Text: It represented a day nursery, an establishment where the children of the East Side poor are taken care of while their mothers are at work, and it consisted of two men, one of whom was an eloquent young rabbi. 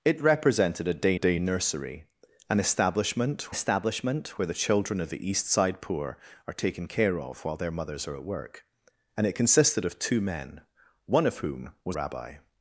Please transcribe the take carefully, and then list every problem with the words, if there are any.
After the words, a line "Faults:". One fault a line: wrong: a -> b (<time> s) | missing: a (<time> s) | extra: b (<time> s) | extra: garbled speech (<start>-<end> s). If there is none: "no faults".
It represented a day day nursery, an establishment establishment where the children of the East Side poor are taken care of while their mothers are at work, and it consisted of two men, one of whom was rabbi.
Faults:
extra: day (1.1 s)
extra: establishment (3.5 s)
missing: an eloquent young (12.0 s)